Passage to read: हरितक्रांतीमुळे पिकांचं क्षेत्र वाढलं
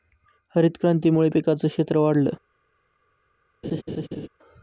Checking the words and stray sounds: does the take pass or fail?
fail